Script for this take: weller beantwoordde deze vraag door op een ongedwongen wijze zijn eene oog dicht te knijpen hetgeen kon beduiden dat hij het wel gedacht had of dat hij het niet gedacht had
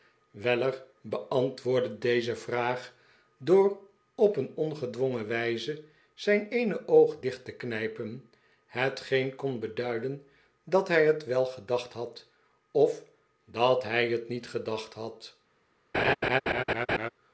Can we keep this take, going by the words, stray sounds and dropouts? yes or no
no